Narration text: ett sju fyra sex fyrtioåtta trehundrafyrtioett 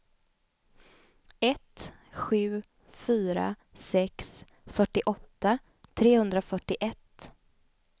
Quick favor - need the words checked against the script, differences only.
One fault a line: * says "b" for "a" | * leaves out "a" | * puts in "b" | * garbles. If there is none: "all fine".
all fine